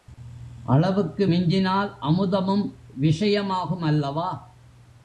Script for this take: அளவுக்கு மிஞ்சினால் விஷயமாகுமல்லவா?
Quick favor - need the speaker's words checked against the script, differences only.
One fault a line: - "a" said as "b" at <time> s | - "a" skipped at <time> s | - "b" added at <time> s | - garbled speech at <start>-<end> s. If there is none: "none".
- "அமுதமும்" added at 2.0 s